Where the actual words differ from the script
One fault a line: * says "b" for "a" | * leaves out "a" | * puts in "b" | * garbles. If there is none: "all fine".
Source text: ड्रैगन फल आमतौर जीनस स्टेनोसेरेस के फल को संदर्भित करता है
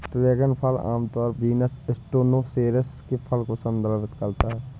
all fine